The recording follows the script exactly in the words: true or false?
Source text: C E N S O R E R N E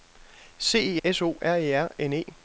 false